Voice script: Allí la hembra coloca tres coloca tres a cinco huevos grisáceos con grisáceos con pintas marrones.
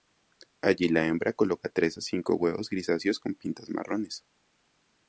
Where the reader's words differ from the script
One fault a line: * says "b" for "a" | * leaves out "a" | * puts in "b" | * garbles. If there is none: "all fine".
* leaves out "coloca tres"
* leaves out "grisáceos con"